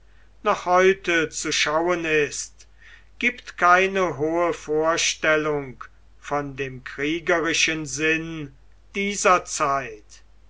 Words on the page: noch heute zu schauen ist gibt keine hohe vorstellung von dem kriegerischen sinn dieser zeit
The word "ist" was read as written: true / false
true